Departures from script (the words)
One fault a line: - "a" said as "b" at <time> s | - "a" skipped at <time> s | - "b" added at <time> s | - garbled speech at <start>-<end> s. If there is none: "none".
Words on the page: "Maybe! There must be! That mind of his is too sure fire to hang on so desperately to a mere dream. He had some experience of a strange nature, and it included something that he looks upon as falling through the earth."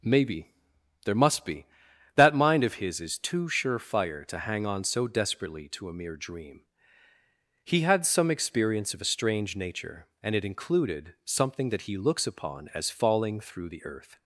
none